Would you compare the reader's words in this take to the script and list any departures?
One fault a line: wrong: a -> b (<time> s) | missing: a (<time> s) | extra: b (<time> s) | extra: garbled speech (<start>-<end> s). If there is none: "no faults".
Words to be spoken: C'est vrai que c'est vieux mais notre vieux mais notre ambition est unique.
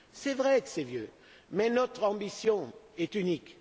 missing: vieux mais notre (2.0 s)